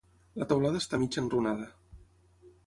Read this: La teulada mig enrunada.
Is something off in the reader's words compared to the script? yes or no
yes